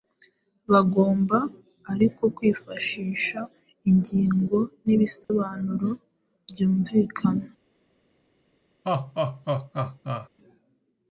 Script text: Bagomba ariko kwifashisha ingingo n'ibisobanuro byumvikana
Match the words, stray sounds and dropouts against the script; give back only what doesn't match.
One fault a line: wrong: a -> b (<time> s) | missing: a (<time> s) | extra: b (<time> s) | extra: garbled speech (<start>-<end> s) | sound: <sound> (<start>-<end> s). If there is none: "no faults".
sound: dropout (5.2-5.3 s)
sound: laugh (8.8-10.3 s)